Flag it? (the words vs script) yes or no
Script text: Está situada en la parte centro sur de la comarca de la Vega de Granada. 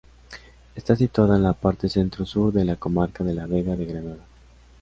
no